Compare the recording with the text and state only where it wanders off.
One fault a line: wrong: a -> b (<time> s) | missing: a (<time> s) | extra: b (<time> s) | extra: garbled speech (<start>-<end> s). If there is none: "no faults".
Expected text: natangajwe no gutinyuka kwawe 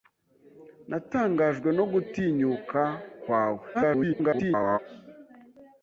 extra: garbled speech (3.7-4.8 s)